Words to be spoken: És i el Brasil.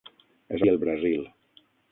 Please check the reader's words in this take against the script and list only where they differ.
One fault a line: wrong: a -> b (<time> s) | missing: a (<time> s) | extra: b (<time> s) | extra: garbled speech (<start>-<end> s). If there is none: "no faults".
no faults